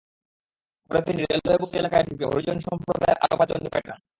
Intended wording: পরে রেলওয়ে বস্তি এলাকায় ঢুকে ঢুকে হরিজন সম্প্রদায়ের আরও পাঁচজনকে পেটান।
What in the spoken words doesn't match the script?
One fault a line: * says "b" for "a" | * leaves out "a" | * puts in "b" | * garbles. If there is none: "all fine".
* puts in "তিনি"
* leaves out "ঢুকে"